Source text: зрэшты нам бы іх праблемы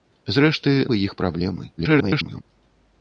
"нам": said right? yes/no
no